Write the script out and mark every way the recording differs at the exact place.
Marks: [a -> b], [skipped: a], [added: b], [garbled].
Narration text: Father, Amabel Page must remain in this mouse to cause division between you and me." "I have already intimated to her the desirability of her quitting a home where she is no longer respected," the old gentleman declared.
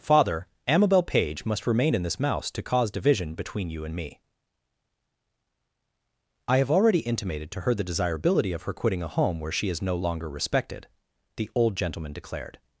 Father, Amabel Page must remain in this mouse to cause division between you and me." "I have already intimated to her the desirability of her quitting a home where she is no longer respected," the old gentleman declared.